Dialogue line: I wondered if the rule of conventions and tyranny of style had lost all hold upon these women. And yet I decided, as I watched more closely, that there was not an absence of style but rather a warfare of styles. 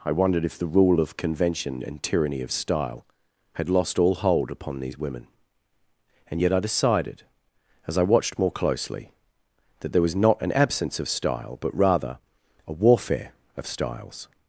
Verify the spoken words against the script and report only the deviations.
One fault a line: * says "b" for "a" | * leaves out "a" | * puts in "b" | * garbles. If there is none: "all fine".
* says "convention" for "conventions"